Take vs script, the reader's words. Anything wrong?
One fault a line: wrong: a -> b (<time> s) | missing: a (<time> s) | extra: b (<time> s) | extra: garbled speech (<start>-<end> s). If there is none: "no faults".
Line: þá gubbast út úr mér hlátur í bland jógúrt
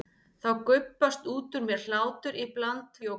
no faults